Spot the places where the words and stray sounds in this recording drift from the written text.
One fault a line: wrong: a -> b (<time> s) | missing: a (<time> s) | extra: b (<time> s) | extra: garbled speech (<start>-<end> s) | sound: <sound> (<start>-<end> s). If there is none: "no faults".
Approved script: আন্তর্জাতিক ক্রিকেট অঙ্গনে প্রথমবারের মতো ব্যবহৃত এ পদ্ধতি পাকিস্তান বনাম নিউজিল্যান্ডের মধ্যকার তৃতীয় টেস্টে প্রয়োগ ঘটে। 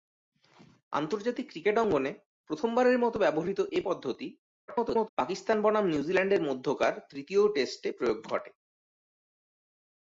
extra: garbled speech (4.7-5.1 s)